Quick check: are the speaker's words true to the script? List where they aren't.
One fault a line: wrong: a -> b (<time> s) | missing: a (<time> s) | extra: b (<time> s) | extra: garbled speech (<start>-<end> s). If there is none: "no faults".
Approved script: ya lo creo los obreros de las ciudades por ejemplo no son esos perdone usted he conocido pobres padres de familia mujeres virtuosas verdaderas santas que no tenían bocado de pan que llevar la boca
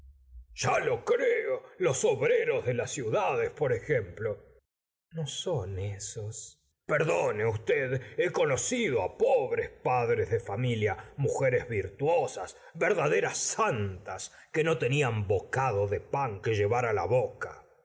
no faults